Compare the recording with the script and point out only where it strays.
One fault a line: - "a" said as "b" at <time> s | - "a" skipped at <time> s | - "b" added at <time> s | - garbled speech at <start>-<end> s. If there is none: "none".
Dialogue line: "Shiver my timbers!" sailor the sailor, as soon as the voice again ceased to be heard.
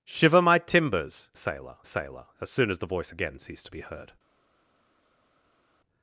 none